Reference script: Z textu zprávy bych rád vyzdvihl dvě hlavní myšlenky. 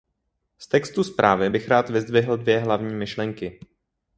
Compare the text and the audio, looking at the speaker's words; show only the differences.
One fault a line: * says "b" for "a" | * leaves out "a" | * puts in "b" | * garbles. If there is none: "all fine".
all fine